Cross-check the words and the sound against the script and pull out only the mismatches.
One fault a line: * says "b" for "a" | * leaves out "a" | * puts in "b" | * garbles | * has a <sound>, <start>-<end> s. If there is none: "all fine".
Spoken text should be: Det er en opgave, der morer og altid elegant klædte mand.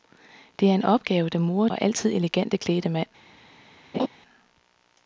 * has a laugh, 3.9-4.1 s